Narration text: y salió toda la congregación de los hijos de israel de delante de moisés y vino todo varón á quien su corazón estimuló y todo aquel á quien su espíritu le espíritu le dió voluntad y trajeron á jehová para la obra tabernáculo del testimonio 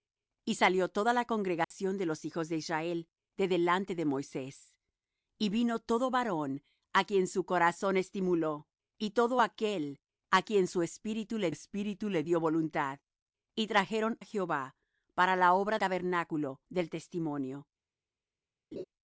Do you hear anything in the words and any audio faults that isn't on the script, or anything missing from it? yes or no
yes